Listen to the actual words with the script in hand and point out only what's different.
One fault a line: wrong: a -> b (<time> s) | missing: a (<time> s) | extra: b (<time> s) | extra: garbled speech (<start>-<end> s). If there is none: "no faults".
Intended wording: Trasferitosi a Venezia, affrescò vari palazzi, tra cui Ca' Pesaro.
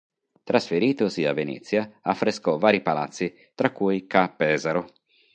no faults